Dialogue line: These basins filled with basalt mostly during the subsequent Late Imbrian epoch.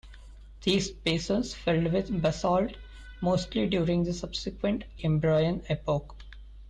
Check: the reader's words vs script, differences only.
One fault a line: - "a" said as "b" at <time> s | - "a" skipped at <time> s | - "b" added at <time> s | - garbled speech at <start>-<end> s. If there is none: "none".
- "Late" skipped at 4.8 s